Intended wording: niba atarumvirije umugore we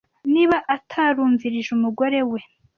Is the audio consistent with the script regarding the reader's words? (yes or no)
yes